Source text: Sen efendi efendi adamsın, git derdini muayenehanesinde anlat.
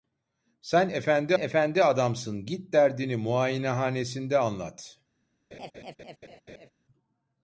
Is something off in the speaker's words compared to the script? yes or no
no